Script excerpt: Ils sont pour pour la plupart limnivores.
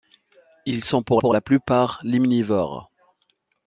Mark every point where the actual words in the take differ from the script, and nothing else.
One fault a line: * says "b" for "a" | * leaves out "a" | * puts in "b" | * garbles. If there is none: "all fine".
all fine